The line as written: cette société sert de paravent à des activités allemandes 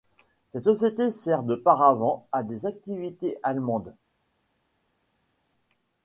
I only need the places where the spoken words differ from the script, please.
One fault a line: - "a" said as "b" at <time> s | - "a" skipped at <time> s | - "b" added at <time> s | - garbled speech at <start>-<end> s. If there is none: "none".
none